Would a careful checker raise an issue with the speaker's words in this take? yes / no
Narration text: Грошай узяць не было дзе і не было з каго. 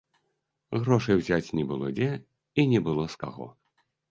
no